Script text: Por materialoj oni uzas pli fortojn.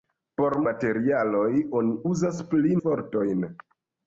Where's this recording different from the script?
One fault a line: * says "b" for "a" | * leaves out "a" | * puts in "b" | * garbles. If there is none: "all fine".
all fine